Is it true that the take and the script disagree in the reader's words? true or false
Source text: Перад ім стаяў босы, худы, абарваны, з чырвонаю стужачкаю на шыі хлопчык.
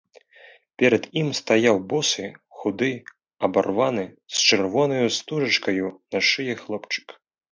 false